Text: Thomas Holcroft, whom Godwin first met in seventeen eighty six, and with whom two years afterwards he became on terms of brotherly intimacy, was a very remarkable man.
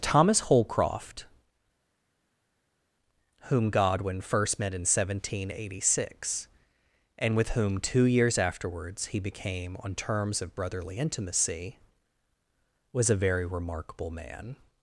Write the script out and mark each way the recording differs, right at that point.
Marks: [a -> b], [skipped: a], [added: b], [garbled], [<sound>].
Thomas Holcroft, whom Godwin first met in seventeen eighty six, and with whom two years afterwards he became on terms of brotherly intimacy, was a very remarkable man.